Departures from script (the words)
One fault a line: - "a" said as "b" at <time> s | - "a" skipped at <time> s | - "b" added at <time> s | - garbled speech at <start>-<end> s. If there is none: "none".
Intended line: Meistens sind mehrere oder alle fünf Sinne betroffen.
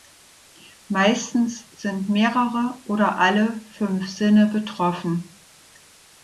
none